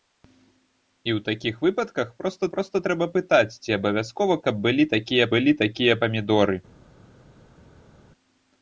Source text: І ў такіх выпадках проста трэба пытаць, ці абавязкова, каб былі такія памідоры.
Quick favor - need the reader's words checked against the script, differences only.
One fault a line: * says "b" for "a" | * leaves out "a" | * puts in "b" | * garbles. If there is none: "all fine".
* puts in "проста"
* puts in "былі такія"